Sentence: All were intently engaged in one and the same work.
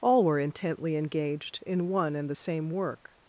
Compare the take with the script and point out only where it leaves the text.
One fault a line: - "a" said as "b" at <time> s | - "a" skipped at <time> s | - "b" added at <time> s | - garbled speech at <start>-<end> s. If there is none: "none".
none